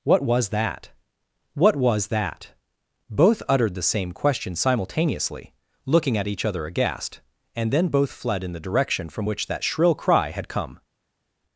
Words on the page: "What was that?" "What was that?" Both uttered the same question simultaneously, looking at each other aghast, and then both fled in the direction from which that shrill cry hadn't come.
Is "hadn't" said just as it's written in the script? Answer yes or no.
no